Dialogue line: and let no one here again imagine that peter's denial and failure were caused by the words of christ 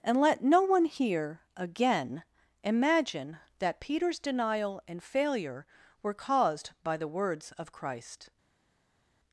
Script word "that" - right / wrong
right